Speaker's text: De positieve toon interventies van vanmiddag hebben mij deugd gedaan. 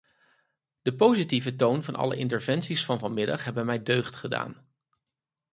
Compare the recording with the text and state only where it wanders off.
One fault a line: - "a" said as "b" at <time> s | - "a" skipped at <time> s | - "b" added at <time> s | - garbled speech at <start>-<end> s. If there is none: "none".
- "van alle" added at 1.8 s